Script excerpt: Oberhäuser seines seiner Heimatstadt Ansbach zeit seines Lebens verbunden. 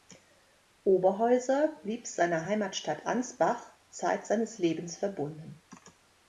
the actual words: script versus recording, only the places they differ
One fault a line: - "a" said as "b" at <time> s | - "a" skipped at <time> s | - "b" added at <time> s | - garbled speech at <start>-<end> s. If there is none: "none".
- "seines" said as "blieb" at 1.8 s